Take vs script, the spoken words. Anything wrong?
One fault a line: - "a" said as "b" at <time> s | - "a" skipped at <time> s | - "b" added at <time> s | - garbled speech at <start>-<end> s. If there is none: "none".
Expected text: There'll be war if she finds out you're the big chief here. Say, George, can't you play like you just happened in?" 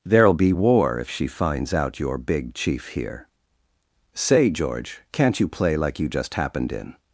- "the" skipped at 2.2 s